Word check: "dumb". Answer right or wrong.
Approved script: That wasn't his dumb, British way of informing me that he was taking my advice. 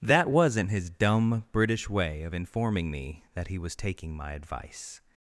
right